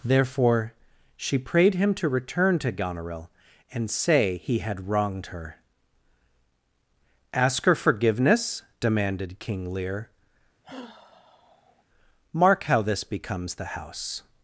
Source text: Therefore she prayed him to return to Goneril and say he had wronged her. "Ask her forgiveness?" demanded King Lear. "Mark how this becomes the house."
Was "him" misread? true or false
false